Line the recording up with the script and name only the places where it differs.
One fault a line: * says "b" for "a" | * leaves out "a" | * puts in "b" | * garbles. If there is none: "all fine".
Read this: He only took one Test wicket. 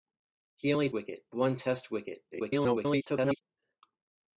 * says "wicket" for "took"
* garbles